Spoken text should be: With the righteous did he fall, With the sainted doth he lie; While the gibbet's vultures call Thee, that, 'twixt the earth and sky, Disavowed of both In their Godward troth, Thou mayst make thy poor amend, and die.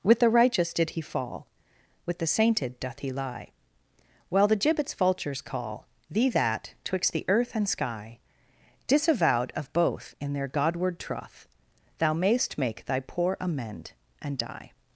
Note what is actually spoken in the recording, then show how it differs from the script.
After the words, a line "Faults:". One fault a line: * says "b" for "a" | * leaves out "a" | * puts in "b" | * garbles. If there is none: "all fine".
With the righteous did he fall, With the sainted doth he lie; While the gibbet's vultures call Thee, that, 'twixt the earth and sky, Disavowed of both In their Godward troth, Thou mayst make thy poor amend, and die.
Faults:
all fine